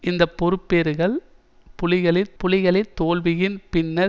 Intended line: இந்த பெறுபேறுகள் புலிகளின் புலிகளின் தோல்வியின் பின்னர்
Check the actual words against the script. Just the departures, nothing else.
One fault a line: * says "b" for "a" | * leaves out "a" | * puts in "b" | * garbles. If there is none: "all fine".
all fine